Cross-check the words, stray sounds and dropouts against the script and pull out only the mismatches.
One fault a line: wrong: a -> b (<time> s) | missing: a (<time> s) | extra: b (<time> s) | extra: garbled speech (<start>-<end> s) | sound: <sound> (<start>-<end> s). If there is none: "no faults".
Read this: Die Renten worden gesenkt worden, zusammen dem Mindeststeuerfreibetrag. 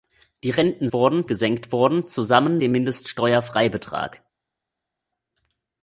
no faults